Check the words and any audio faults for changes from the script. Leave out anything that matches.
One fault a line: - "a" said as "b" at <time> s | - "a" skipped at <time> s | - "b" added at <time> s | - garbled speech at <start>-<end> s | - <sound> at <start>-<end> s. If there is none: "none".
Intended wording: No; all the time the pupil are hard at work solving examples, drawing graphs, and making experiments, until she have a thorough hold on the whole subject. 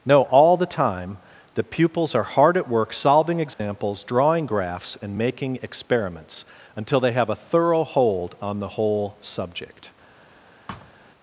- "pupil" said as "pupils" at 1.6 s
- dropout at 3.5-3.6 s
- "she" said as "they" at 7.0 s
- thud at 10.7-10.9 s